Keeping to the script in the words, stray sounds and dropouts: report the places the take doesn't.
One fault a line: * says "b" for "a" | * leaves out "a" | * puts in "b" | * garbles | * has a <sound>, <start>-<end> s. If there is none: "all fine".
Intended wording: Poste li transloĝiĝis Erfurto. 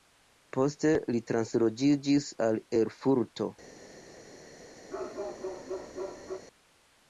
* puts in "al"
* has a bark, 4.9-6.4 s